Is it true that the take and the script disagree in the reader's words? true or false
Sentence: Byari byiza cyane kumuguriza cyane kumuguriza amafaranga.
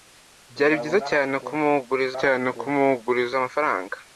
false